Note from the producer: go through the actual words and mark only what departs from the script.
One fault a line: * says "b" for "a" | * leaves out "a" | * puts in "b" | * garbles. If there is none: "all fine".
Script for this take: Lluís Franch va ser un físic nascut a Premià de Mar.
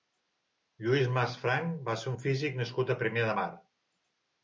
* puts in "Mas"